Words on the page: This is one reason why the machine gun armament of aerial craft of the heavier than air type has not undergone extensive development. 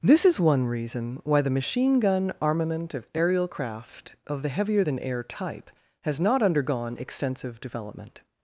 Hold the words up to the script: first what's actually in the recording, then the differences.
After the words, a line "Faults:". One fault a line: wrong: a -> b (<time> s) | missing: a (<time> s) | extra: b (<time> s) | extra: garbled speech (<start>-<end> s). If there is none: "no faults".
This is one reason why the machine gun armament of aerial craft of the heavier than air type has not undergone extensive development.
Faults:
no faults